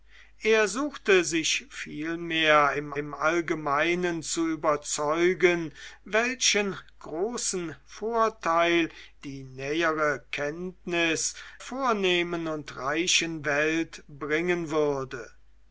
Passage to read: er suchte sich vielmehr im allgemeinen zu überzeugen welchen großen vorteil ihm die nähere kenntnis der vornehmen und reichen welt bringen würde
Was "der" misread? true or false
true